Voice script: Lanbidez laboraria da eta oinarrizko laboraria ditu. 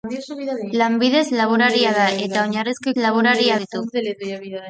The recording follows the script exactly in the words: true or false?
true